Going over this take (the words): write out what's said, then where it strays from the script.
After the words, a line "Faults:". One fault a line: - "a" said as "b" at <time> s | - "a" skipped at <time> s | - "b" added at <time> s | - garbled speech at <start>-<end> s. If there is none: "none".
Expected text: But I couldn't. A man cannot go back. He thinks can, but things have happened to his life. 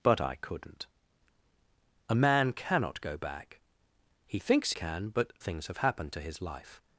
But I couldn't. A man cannot go back. He thinks can, but things have happened to his life.
Faults:
none